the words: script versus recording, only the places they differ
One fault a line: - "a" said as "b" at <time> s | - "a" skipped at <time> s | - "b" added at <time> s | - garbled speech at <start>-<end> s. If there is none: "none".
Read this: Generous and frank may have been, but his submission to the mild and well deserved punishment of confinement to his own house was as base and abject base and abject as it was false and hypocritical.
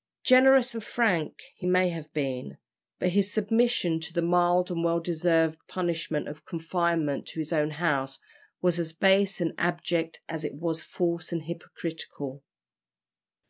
- "he" added at 1.5 s
- "base and abject" skipped at 10.2 s